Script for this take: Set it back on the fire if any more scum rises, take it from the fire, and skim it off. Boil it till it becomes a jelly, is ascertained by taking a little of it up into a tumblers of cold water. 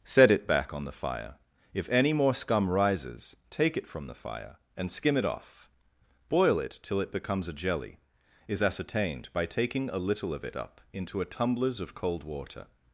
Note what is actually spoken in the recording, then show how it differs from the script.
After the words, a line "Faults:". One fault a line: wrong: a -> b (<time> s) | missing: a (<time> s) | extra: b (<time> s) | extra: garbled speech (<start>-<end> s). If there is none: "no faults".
Set it back on the fire if any more scum rises, take it from the fire, and skim it off. Boil it till it becomes a jelly, is ascertained by taking a little of it up into a tumblers of cold water.
Faults:
no faults